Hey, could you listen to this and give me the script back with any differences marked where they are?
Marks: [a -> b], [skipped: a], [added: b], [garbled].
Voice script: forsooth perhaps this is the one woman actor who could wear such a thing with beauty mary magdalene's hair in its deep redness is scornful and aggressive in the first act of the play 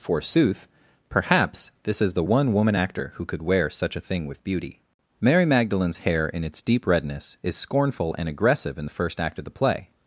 forsooth perhaps this is the one woman actor who could wear such a thing with beauty mary magdalene's hair in its deep redness is scornful and aggressive in the first act of the play